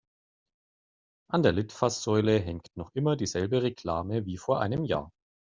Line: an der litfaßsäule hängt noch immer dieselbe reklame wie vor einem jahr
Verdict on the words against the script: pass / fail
pass